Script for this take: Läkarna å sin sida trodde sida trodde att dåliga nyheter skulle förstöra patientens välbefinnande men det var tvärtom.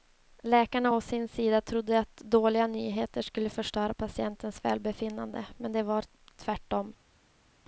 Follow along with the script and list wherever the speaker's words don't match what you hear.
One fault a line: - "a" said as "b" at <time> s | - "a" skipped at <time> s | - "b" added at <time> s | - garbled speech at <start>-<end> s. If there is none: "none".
- "sida trodde" skipped at 2.0 s